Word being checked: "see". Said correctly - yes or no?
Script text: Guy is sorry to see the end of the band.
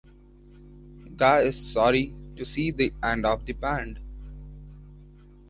yes